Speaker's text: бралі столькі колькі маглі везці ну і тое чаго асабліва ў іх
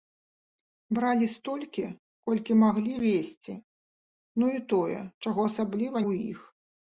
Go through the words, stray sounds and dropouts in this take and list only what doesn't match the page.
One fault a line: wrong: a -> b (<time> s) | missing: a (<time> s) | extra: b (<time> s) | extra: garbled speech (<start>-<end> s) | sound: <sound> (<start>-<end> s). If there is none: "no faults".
no faults